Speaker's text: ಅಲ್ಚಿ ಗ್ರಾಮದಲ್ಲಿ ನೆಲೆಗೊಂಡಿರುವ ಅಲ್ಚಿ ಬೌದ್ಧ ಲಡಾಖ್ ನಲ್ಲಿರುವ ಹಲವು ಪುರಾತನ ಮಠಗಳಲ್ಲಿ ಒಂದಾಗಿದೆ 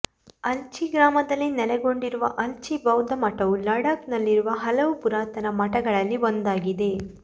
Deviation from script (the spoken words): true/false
true